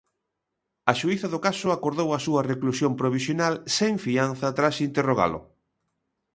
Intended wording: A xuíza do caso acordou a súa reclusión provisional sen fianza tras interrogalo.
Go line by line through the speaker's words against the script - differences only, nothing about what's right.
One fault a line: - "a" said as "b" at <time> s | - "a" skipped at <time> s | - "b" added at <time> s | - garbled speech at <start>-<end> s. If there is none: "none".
none